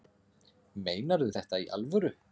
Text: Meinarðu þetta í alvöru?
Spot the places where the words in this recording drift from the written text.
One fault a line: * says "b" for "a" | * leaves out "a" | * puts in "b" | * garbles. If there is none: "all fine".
all fine